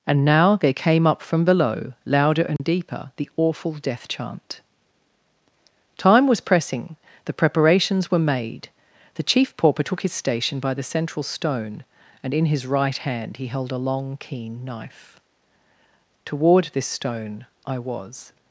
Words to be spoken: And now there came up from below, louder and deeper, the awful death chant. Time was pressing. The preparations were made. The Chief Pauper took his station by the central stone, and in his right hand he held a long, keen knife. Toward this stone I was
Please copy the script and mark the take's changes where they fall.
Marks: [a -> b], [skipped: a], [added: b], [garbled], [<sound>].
And now there came up from below, louder and [dropout] deeper, the awful death chant. Time was pressing. The preparations were made. The Chief Pauper took his station by the central stone, and in his right hand he held a long, keen knife. Toward this stone I was